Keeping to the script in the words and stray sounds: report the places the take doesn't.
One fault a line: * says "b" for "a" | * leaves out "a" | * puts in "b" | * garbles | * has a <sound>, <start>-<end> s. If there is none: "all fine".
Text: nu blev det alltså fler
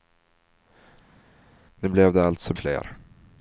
all fine